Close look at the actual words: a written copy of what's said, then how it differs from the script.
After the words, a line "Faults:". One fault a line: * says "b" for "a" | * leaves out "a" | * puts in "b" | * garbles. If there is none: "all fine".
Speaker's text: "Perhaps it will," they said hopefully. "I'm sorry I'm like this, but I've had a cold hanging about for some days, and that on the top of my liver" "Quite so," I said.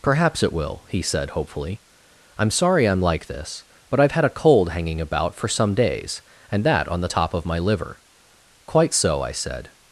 "Perhaps it will," he said hopefully. "I'm sorry I'm like this, but I've had a cold hanging about for some days, and that on the top of my liver" "Quite so," I said.
Faults:
* says "he" for "they"